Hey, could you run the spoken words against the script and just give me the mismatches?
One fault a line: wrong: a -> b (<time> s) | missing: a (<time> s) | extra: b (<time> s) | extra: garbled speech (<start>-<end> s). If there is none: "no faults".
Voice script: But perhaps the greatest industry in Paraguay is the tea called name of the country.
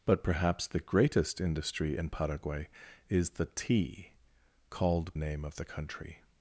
no faults